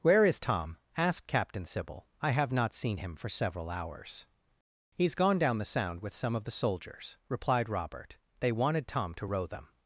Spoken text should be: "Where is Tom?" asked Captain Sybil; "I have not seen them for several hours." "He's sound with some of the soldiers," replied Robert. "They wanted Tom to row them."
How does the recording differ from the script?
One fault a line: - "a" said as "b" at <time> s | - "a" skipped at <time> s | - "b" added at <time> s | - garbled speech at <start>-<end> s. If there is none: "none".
- "them" said as "him" at 3.0 s
- "gone down the" added at 5.2 s